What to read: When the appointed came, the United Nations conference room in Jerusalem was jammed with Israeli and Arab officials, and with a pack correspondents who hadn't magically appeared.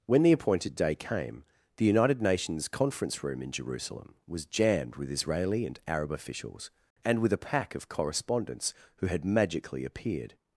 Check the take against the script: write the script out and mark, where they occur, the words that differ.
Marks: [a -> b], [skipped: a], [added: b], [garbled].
When the appointed [added: day] came, the United Nations conference room in Jerusalem was jammed with Israeli and Arab officials, and with a pack [added: of] correspondents who [hadn't -> had] magically appeared.